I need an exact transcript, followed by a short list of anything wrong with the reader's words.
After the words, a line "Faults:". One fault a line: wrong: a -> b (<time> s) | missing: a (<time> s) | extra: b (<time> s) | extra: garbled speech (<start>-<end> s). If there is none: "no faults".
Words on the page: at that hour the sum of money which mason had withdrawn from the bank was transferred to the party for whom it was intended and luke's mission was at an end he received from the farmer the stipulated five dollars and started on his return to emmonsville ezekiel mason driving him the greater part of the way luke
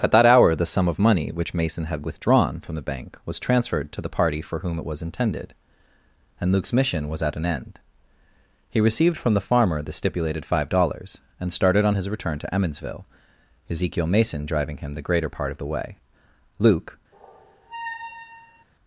at that hour the sum of money which mason had withdrawn from the bank was transferred to the party for whom it was intended and luke's mission was at an end he received from the farmer the stipulated five dollars and started on his return to emmonsville ezekiel mason driving him the greater part of the way luke
Faults:
no faults